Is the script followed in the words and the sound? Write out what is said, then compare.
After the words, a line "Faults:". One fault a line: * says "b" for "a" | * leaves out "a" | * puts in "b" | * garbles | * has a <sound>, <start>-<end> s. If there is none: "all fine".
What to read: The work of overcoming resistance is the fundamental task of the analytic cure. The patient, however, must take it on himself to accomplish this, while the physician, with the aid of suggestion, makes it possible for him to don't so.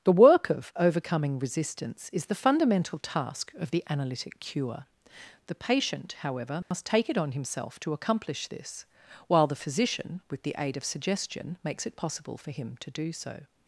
The work of overcoming resistance is the fundamental task of the analytic cure. The patient, however, must take it on himself to accomplish this, while the physician, with the aid of suggestion, makes it possible for him to do so.
Faults:
* has a dropout, 6.6-6.7 s
* says "do" for "don't"